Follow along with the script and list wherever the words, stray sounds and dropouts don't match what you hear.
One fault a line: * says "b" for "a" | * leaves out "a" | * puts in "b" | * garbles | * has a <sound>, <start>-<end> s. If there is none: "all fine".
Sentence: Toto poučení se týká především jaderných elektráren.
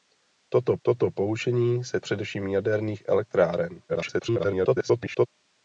* puts in "toto"
* leaves out "týká"
* garbles